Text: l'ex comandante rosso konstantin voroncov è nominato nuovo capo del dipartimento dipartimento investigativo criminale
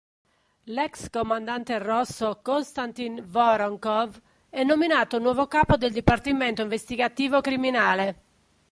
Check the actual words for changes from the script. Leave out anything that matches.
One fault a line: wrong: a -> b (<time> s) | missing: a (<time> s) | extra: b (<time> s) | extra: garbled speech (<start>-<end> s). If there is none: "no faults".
missing: dipartimento (6.6 s)